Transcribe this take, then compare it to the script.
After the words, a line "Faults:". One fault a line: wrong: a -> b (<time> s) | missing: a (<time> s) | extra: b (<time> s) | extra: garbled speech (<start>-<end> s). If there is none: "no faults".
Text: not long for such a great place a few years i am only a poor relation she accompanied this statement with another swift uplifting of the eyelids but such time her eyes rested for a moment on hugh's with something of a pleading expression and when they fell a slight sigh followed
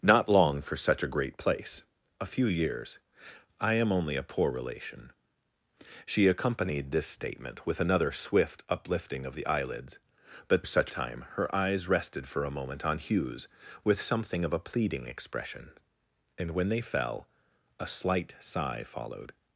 not long for such a great place a few years i am only a poor relation she accompanied this statement with another swift uplifting of the eyelids but such time her eyes rested for a moment on hugh's with something of a pleading expression and when they fell a slight sigh followed
Faults:
no faults